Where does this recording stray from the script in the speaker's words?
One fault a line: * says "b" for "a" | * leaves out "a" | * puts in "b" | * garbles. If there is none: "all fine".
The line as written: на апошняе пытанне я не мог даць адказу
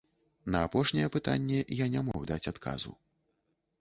all fine